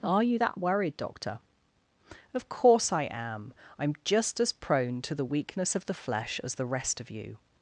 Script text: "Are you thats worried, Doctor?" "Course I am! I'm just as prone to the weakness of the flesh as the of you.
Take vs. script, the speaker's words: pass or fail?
fail